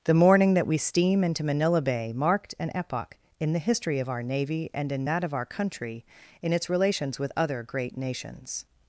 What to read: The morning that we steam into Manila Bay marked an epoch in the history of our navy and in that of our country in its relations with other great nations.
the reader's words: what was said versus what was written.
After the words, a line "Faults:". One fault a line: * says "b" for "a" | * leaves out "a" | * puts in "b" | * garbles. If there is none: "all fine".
The morning that we steam into Manila Bay marked an epoch in the history of our navy and in that of our country in its relations with other great nations.
Faults:
all fine